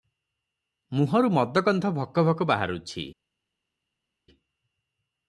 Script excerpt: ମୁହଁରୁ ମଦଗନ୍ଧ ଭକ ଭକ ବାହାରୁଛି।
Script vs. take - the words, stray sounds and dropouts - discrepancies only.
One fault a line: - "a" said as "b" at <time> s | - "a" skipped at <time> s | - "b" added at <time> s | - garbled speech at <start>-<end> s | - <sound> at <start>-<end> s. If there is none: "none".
none